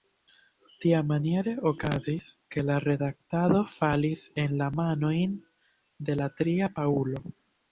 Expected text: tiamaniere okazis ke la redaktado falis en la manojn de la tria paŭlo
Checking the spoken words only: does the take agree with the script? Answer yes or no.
yes